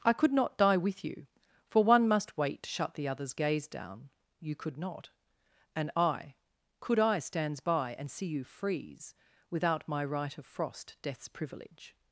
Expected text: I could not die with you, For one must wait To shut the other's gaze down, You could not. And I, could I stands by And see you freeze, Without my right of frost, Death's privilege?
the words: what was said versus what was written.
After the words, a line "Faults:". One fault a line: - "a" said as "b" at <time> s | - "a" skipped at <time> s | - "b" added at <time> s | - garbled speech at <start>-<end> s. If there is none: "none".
I could not die with you, For one must wait To shut the other's gaze down, You could not. And I, could I stands by And see you freeze, Without my right of frost, Death's privilege?
Faults:
none